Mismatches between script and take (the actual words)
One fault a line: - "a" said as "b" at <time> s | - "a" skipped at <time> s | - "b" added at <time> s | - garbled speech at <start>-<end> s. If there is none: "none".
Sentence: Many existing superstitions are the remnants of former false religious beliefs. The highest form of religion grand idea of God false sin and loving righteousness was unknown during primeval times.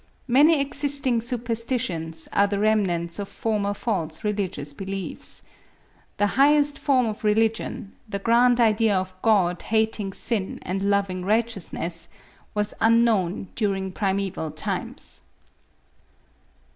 - "the" added at 8.1 s
- "false" said as "hating" at 9.6 s